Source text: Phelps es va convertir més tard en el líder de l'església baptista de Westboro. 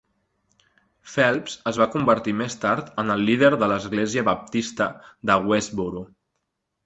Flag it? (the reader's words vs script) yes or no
no